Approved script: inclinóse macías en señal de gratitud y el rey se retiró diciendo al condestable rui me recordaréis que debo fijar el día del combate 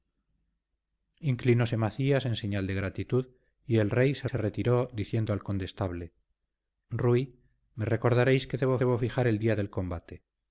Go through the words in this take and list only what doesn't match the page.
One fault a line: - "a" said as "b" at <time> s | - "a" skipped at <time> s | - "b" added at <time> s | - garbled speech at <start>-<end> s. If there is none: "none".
- "se" added at 4.2 s
- "debo" added at 8.8 s